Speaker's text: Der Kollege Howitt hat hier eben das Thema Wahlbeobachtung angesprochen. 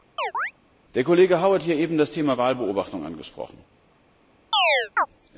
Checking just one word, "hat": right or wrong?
wrong